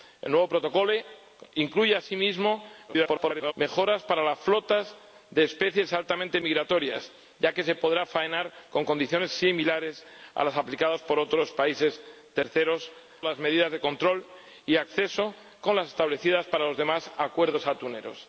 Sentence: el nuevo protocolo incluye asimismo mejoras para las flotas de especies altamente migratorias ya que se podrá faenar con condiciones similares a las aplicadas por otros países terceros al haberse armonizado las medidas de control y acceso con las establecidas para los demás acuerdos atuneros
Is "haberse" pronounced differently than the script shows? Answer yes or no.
yes